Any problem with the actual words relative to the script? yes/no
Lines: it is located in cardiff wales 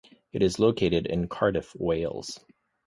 no